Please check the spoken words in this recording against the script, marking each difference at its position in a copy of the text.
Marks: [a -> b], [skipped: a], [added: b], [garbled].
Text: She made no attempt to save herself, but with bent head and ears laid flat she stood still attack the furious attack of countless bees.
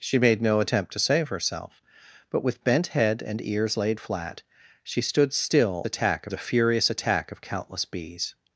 She made no attempt to save herself, but with bent head and ears laid flat she stood still attack the furious attack of countless bees.